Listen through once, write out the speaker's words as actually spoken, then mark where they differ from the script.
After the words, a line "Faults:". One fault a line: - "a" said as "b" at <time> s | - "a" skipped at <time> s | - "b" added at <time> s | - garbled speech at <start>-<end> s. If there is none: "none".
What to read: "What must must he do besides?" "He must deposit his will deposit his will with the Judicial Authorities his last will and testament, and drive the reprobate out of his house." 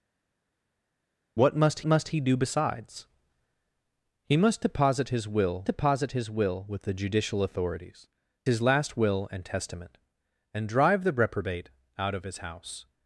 "What must must he do besides?" "He must deposit his will deposit his will with the Judicial Authorities his last will and testament, and drive the reprobate out of his house."
Faults:
none